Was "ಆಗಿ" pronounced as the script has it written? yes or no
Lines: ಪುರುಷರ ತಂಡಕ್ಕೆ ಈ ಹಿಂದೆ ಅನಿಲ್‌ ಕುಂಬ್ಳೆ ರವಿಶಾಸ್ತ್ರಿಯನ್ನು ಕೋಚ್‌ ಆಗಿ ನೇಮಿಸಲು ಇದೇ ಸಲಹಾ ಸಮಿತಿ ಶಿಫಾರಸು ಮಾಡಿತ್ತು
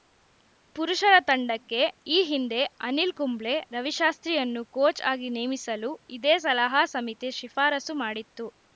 yes